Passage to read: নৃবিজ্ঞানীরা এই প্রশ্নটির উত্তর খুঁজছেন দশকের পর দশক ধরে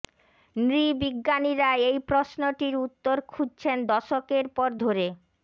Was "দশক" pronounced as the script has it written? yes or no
no